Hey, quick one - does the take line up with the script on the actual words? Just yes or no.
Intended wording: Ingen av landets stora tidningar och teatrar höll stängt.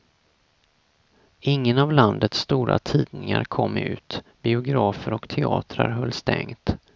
no